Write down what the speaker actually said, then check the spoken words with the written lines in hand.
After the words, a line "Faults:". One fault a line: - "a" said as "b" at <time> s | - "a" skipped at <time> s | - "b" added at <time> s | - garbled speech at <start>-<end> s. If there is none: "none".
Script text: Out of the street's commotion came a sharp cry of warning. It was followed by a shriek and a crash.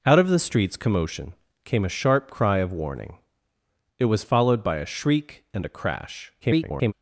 Out of the street's commotion came a sharp cry of warning. It was followed by a shriek and a crash. [garbled]
Faults:
- garbled speech at 6.4-6.9 s